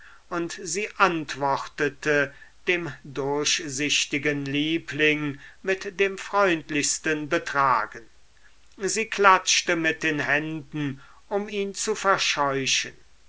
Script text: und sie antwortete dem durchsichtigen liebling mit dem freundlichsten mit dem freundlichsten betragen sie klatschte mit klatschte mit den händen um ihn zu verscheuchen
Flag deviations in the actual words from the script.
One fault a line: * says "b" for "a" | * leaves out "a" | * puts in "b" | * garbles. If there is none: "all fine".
* leaves out "mit dem freundlichsten"
* leaves out "klatschte mit"